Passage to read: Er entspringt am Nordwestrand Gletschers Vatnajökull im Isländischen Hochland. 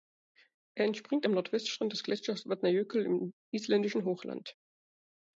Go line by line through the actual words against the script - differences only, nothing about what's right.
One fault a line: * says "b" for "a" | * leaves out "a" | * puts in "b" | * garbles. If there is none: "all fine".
* puts in "des"